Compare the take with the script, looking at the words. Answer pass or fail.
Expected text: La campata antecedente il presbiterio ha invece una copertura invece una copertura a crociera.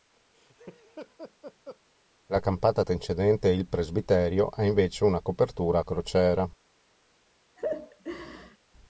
fail